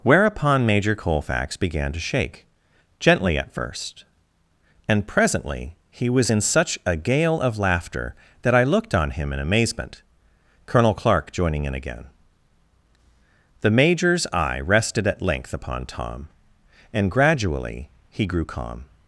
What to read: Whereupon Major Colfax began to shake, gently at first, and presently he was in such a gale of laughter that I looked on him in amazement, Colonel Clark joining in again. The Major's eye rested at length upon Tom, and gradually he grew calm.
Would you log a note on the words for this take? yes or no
no